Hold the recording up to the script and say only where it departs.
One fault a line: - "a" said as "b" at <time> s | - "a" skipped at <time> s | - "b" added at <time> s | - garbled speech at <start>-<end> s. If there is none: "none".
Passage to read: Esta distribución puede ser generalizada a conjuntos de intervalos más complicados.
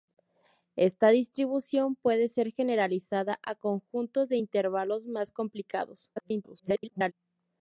- garbled speech at 6.2-7.1 s